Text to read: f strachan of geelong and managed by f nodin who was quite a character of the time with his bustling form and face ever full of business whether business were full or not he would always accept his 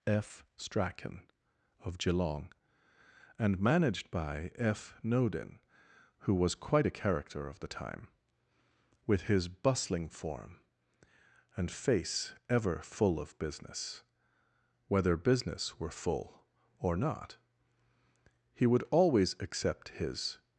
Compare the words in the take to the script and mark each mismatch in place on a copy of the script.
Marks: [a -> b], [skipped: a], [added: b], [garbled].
f strachan of geelong and managed by f nodin who was quite a character of the time with his bustling form and face ever full of business whether business were full or not he would always accept his